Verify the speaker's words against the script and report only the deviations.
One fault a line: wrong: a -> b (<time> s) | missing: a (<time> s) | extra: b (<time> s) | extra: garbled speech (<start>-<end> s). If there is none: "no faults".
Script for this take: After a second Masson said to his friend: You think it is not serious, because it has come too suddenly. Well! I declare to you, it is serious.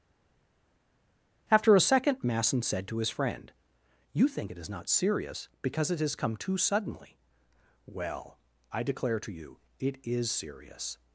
no faults